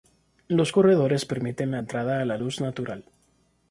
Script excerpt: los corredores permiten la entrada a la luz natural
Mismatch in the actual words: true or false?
false